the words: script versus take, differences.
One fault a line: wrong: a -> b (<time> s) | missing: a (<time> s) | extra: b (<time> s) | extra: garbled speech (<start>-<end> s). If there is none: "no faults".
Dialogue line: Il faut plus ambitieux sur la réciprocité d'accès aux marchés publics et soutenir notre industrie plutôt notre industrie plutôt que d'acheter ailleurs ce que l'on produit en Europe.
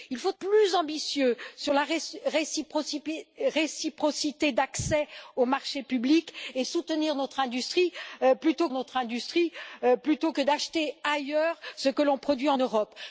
no faults